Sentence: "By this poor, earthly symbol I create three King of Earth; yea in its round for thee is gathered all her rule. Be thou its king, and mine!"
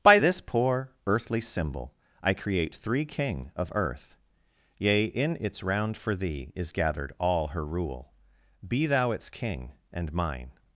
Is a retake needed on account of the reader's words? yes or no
no